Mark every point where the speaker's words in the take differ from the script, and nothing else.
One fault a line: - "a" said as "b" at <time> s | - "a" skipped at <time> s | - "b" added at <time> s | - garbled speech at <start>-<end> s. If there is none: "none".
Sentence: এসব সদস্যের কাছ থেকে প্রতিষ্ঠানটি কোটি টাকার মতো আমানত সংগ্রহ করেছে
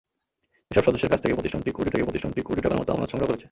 - "থেকে প্রতিষ্ঠানটি কোটি" added at 1.9 s